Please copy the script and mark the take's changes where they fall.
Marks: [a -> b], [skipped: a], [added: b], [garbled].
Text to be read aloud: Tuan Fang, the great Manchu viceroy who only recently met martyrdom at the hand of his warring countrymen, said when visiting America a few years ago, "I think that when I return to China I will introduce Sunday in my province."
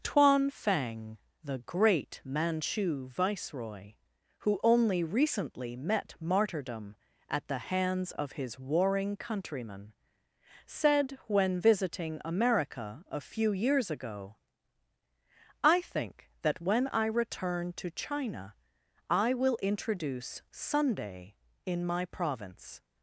Tuan Fang, the great Manchu viceroy who only recently met martyrdom at the [hand -> hands] of his warring countrymen, said when visiting America a few years ago, "I think that when I return to China I will introduce Sunday in my province."